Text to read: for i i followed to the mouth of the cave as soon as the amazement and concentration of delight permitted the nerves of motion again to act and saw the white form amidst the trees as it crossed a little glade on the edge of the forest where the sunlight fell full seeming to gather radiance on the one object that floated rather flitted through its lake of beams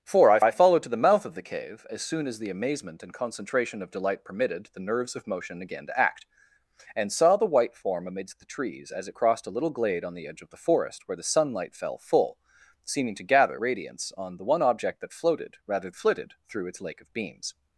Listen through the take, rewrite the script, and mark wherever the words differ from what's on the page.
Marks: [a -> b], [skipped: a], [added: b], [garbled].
for i i followed to the mouth of the cave as soon as the amazement and concentration of delight permitted the nerves of motion again to act and saw the white form amidst the trees as it crossed a little glade on the edge of the forest where the sunlight fell full seeming to gather radiance on the one object that floated rather flitted through its lake of beams